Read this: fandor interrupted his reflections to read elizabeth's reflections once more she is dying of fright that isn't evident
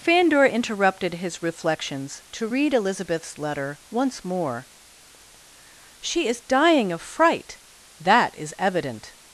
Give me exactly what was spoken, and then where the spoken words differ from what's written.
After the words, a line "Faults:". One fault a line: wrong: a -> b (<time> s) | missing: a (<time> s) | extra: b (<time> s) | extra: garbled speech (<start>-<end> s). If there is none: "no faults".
fandor interrupted his reflections to read elizabeth's letter once more she is dying of fright that is evident
Faults:
wrong: reflections -> letter (3.4 s)
wrong: isn't -> is (8.4 s)